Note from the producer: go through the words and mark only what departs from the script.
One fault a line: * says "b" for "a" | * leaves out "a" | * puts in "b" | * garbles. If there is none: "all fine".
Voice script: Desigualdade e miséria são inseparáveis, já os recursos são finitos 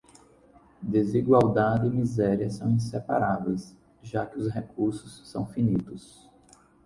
* puts in "que"